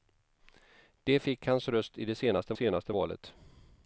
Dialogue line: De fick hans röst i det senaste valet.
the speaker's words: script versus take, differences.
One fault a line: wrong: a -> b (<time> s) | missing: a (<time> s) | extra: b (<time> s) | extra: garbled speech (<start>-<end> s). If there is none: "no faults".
extra: senaste (2.5 s)